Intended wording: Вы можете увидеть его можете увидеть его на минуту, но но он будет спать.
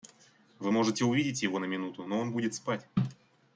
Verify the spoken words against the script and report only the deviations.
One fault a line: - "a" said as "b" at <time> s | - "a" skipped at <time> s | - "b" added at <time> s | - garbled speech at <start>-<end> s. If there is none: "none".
- "можете увидеть его" skipped at 1.6 s
- "но" skipped at 2.2 s